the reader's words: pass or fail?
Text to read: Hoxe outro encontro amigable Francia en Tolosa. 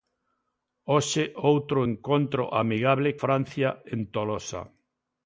pass